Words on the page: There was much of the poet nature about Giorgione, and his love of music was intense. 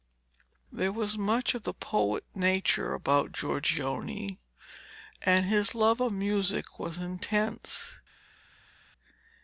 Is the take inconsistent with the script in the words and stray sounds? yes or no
no